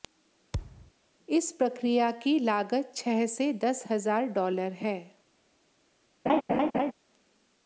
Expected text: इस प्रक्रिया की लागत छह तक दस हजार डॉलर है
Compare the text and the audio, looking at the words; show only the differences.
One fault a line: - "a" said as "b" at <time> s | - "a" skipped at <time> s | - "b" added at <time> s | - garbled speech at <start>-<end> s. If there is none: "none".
- "तक" said as "से" at 3.3 s